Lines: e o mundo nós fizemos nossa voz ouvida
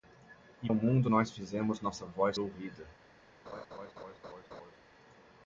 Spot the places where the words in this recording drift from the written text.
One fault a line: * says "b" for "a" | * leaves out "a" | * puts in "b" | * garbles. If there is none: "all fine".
all fine